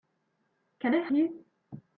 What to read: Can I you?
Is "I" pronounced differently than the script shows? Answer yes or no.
no